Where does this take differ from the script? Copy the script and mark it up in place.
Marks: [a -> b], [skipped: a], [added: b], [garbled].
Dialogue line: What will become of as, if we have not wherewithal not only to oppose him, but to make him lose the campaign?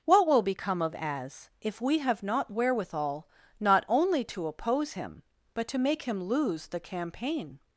What will become of as, if we have not wherewithal not only to oppose him, but to make him lose the campaign?